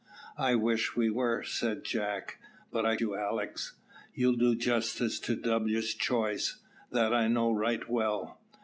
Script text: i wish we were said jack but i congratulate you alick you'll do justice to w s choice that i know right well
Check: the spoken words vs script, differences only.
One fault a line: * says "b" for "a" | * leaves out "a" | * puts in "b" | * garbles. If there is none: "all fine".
* leaves out "congratulate"